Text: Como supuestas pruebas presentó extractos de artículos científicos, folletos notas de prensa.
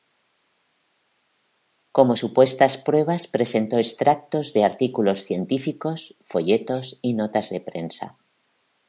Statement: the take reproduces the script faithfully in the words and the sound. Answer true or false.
false